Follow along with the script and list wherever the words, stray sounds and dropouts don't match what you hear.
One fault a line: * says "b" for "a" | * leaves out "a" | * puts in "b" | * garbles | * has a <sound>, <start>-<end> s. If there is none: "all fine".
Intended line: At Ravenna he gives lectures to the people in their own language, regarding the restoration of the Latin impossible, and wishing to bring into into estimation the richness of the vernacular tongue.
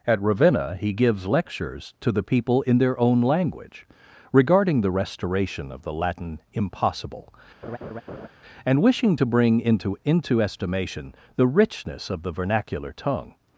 * has a laugh, 7.6-8.3 s